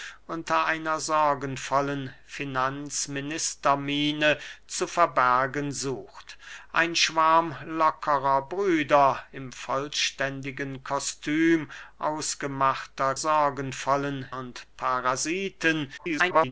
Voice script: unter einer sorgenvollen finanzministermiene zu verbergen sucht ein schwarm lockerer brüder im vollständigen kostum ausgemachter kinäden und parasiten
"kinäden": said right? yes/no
no